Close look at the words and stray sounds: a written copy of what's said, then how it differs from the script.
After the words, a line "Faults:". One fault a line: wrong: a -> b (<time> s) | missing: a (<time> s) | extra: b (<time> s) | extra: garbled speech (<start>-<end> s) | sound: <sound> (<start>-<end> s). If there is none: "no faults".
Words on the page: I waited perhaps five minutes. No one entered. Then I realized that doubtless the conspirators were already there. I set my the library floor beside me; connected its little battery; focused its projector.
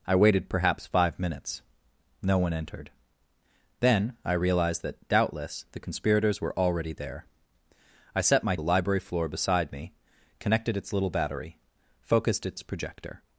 I waited perhaps five minutes. No one entered. Then I realized that doubtless the conspirators were already there. I set my the library floor beside me; connected its little battery; focused its projector.
Faults:
no faults